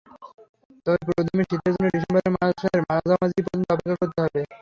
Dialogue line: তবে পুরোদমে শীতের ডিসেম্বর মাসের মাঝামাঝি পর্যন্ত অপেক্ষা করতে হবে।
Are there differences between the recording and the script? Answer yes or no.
yes